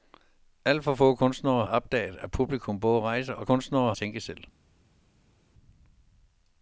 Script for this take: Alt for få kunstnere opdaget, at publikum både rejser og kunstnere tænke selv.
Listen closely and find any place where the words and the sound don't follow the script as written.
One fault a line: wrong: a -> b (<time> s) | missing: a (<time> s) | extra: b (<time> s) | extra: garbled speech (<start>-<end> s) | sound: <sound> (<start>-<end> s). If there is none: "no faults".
no faults